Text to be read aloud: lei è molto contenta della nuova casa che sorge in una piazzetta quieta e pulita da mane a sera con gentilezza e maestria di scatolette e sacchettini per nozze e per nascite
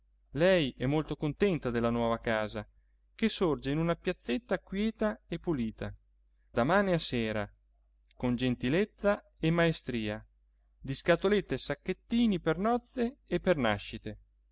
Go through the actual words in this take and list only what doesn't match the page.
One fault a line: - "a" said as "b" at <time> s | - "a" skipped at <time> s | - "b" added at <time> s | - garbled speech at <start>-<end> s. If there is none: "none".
none